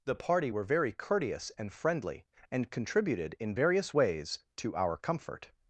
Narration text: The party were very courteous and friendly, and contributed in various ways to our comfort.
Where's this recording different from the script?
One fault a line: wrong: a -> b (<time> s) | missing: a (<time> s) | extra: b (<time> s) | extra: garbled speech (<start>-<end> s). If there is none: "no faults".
no faults